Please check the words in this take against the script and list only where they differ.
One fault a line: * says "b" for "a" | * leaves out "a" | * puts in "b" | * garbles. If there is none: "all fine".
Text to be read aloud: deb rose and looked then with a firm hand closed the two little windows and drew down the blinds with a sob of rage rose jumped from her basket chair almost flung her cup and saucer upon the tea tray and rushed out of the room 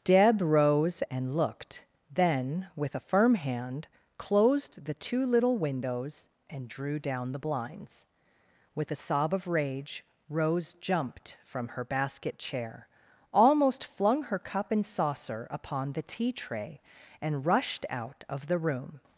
all fine